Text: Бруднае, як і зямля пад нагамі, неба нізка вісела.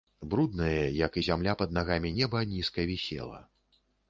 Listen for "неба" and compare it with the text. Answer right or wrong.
right